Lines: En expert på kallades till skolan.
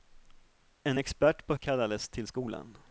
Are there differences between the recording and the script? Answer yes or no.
no